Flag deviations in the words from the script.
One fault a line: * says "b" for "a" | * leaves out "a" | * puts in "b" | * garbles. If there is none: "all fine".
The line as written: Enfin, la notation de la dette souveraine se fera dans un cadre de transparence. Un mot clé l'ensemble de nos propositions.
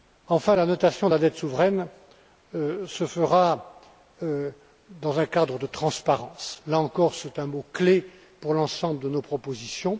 * puts in "Là encore c'est"
* puts in "pour"